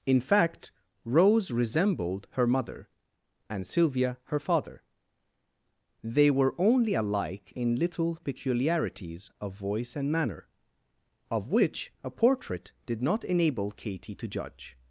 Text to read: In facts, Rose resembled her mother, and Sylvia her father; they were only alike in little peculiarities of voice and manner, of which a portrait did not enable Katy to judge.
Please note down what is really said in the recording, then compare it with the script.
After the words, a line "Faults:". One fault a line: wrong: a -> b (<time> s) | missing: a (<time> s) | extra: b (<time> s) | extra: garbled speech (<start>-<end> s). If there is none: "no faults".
In fact, Rose resembled her mother, and Sylvia her father; they were only alike in little peculiarities of voice and manner, of which a portrait did not enable Katy to judge.
Faults:
wrong: facts -> fact (0.2 s)